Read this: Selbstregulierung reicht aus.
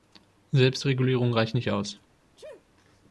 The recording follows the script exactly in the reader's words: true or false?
false